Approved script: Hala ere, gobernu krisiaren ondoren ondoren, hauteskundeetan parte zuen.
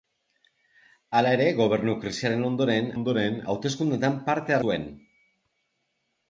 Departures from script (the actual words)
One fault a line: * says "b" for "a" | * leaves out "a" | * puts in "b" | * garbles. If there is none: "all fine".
all fine